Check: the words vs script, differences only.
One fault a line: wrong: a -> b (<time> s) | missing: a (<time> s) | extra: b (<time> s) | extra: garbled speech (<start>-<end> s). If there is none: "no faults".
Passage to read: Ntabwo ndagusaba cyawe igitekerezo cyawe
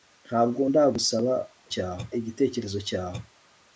no faults